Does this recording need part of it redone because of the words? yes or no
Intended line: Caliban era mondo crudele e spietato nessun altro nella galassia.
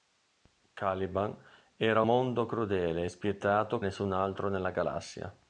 no